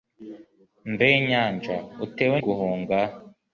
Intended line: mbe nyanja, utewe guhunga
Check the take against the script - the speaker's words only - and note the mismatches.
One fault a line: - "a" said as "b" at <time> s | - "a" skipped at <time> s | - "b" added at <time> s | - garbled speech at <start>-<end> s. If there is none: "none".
none